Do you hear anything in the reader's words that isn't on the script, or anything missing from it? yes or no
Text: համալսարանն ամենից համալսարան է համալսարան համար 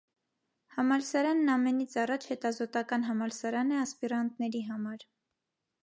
yes